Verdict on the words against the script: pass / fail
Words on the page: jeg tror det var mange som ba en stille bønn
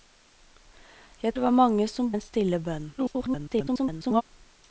fail